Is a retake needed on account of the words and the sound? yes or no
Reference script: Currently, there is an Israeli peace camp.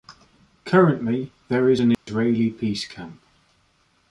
yes